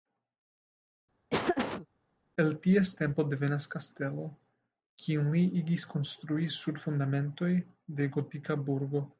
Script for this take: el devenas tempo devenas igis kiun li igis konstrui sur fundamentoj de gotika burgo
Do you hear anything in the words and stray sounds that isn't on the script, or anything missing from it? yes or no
yes